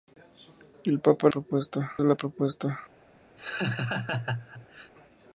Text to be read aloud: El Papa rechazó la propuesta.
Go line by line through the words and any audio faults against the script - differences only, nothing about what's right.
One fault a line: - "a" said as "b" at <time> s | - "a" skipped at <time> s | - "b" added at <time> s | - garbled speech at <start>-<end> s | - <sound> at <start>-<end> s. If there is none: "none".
- "rechazó" said as "propuesta" at 1.3 s
- laugh at 3.4-4.9 s